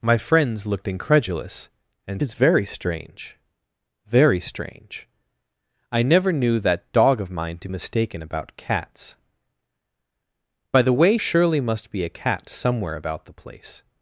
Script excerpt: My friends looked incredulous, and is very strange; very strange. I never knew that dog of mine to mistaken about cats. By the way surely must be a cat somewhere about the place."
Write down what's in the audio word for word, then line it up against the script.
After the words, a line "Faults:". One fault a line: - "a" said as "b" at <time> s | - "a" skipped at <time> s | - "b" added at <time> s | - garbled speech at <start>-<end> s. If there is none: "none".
My friends looked incredulous, and is very strange; very strange. I never knew that dog of mine to mistaken about cats. By the way surely must be a cat somewhere about the place."
Faults:
none